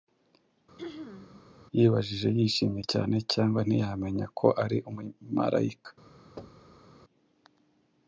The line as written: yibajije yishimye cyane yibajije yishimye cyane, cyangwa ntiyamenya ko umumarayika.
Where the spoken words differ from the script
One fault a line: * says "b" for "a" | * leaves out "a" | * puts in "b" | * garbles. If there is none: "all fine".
* leaves out "yibajije yishimye cyane"
* puts in "ari"